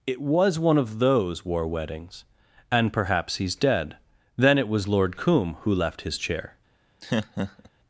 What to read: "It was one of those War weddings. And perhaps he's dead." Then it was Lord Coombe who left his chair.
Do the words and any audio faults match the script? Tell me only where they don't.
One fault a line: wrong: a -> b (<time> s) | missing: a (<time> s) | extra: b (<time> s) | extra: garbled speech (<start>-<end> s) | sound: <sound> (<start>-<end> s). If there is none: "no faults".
sound: laugh (7.0-7.7 s)